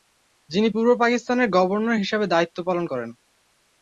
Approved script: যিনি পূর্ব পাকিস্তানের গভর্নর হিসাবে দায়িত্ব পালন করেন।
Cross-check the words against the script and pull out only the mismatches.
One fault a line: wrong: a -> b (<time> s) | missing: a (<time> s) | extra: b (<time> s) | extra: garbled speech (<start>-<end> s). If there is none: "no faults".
no faults